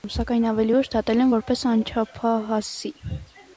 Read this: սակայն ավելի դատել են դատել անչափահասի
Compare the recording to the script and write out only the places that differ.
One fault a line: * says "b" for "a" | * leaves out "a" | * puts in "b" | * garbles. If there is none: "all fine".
* puts in "ուշ"
* says "որպես" for "դատել"